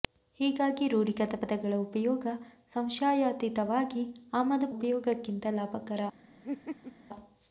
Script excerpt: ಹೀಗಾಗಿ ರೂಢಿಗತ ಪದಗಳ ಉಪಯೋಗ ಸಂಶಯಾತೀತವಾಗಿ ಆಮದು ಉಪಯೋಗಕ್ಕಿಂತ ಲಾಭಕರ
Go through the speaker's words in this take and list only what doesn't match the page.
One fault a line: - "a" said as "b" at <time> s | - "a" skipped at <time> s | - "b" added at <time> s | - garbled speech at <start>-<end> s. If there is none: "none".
none